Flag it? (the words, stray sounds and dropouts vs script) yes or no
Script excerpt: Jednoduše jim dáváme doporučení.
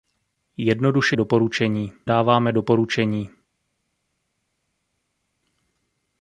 yes